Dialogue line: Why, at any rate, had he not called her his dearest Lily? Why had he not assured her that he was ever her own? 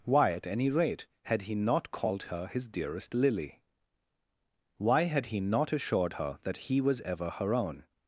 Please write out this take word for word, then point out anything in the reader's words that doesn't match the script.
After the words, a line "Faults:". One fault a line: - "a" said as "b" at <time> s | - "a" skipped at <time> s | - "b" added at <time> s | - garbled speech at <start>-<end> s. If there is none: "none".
Why, at any rate, had he not called her his dearest Lily? Why had he not assured her that he was ever her own?
Faults:
none